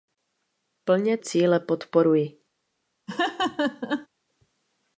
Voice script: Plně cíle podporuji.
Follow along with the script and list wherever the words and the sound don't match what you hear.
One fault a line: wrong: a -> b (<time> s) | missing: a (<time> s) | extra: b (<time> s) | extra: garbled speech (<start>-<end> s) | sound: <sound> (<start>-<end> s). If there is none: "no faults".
sound: laugh (3.1-4.1 s)